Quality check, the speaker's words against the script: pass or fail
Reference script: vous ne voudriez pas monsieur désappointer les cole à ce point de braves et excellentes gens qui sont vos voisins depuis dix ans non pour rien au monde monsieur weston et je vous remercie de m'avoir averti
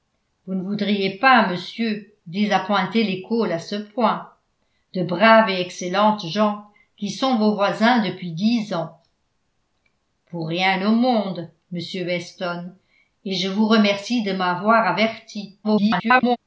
fail